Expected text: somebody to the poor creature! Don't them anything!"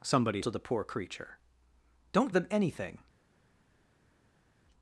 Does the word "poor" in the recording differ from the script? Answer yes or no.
no